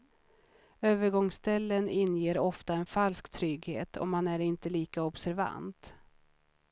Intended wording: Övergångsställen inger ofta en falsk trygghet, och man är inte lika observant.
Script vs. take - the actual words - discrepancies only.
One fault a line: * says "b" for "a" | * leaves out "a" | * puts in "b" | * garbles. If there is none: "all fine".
all fine